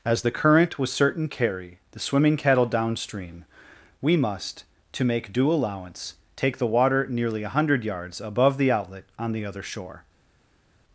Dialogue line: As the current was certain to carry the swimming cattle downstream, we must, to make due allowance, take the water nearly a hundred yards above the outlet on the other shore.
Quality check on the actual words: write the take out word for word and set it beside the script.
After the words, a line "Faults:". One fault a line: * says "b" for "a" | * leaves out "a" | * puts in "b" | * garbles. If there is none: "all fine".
As the current was certain carry the swimming cattle downstream, we must, to make due allowance, take the water nearly a hundred yards above the outlet on the other shore.
Faults:
* leaves out "to"